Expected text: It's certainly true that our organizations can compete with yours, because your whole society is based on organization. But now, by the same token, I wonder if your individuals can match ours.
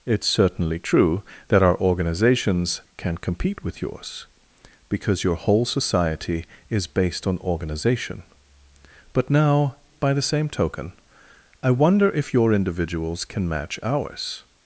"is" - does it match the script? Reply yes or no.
yes